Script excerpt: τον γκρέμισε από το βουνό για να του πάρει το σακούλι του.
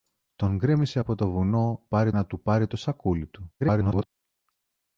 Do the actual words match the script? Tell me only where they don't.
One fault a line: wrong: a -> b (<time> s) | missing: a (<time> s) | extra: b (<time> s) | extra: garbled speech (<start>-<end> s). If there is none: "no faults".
wrong: για -> πάρει (1.9 s)
extra: garbled speech (3.6-4.1 s)